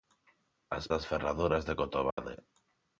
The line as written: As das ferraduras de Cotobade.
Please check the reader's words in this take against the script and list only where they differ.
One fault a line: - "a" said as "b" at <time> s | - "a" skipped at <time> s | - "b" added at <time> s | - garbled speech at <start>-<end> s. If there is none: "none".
none